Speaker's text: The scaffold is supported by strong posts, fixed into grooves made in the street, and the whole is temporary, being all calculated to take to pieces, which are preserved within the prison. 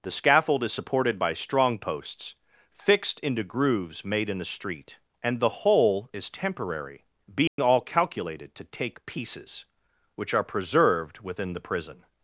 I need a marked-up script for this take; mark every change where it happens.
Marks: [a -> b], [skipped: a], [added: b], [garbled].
The scaffold is supported by strong posts, fixed into grooves made in the street, and the whole is temporary, being all calculated to take [skipped: to] pieces, which are preserved within the prison.